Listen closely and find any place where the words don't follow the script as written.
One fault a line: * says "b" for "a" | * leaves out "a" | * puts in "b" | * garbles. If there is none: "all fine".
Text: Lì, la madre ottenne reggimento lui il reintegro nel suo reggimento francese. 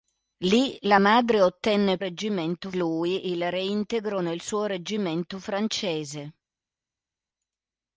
all fine